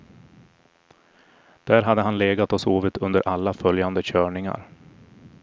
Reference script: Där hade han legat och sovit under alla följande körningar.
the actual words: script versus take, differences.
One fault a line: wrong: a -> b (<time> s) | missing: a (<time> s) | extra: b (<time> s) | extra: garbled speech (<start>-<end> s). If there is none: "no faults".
no faults